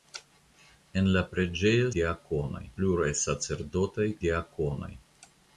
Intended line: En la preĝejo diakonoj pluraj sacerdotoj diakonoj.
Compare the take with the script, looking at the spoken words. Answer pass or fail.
pass